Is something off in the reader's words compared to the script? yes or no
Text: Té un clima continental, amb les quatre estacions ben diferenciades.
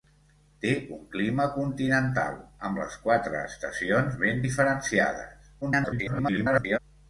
yes